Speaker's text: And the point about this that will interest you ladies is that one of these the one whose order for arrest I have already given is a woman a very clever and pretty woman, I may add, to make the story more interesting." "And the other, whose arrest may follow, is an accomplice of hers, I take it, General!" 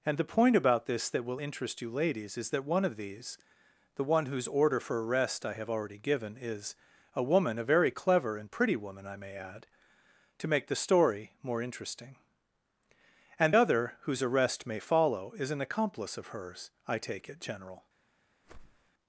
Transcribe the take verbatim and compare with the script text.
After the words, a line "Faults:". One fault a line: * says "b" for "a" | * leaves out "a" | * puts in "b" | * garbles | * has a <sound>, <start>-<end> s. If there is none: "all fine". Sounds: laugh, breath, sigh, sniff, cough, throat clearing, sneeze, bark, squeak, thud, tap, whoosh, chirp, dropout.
And the point about this that will interest you ladies is that one of these the one whose order for arrest I have already given is a woman a very clever and pretty woman, I may add, to make the story more interesting." "And other, whose arrest may follow, is an accomplice of hers, I take it, General!"
Faults:
* leaves out "the"
* has a whoosh, 18.4-18.9 s